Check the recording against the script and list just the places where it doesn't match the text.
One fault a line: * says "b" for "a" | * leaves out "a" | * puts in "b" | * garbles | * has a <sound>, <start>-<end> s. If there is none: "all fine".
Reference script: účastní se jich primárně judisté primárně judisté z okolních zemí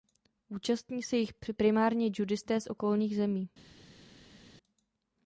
* leaves out "primárně judisté"